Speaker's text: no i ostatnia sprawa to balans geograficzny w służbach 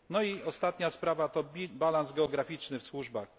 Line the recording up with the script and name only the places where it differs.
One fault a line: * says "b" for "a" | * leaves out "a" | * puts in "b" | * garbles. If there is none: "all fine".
all fine